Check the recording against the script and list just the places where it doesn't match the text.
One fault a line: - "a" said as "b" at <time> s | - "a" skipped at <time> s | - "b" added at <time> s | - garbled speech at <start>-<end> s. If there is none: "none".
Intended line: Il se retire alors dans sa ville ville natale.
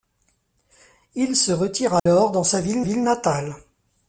none